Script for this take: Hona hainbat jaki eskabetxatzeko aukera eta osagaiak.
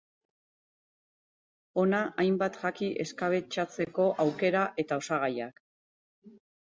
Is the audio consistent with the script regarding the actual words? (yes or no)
yes